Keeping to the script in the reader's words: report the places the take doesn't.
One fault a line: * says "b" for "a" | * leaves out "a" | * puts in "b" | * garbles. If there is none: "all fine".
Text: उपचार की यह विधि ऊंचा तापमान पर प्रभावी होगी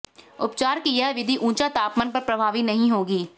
* puts in "नहीं"